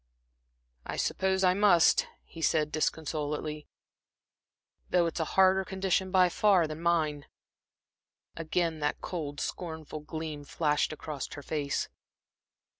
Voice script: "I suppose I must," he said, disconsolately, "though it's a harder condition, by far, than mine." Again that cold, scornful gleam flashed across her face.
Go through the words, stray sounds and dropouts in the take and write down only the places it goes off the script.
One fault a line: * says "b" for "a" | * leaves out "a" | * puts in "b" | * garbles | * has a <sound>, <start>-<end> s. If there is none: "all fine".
all fine